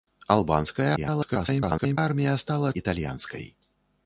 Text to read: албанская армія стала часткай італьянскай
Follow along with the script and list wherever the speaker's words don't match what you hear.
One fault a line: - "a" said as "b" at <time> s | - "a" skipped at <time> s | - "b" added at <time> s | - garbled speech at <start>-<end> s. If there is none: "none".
- garbled speech at 1.0-2.0 s
- "часткай" skipped at 2.7 s